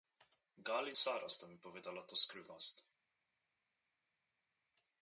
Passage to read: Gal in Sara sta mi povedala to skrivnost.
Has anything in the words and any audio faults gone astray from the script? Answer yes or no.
no